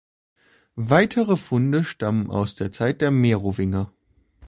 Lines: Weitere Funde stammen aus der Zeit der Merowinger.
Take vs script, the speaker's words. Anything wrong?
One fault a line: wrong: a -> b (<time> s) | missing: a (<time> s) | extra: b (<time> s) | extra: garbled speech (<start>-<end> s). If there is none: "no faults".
no faults